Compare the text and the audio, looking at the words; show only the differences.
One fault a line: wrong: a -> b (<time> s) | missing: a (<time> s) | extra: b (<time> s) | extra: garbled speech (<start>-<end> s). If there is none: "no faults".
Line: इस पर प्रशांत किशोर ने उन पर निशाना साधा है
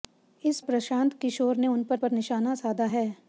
missing: पर (0.6 s)
extra: पर (1.9 s)